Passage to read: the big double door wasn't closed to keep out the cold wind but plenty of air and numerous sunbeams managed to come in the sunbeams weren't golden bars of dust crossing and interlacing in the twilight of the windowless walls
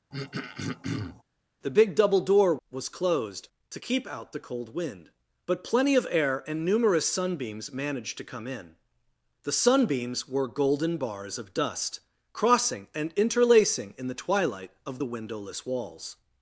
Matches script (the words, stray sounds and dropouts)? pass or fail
fail